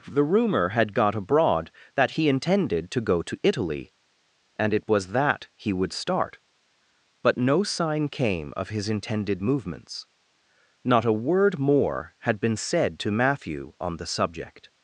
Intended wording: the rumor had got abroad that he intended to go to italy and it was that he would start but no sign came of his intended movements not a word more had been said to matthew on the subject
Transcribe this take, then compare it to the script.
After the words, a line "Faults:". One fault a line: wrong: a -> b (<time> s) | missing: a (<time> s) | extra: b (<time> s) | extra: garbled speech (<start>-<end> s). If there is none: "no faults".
the rumor had got abroad that he intended to go to italy and it was that he would start but no sign came of his intended movements not a word more had been said to matthew on the subject
Faults:
no faults